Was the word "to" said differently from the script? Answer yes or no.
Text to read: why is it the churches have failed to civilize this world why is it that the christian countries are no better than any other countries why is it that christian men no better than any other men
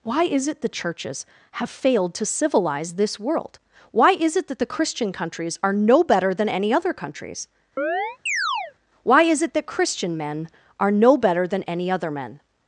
no